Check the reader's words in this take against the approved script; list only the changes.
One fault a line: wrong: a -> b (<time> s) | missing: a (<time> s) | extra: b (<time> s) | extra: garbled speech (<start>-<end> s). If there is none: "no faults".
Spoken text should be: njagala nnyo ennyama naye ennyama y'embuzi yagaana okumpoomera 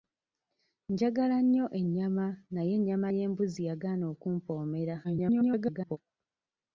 extra: garbled speech (5.0-6.0 s)